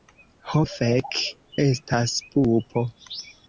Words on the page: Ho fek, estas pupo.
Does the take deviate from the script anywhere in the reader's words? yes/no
no